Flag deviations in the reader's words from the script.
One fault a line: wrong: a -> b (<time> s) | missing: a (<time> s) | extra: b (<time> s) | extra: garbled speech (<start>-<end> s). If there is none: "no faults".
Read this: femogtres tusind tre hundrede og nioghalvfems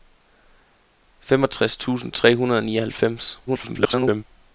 extra: garbled speech (3.5-4.2 s)